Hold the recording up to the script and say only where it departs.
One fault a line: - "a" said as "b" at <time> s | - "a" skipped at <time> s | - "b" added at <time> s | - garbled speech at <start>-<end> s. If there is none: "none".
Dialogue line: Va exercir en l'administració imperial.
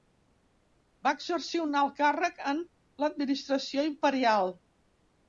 - "un alt càrrec" added at 1.6 s